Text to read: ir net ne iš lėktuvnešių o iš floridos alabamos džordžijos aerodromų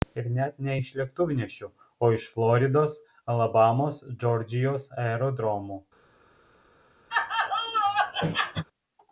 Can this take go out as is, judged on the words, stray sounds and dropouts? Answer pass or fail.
fail